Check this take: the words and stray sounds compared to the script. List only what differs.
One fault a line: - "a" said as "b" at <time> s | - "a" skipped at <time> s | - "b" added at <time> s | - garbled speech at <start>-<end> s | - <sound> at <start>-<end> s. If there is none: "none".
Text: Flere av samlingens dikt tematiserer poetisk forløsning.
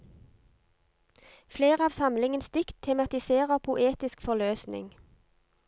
none